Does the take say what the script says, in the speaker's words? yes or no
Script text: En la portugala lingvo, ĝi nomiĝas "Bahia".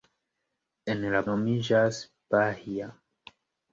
no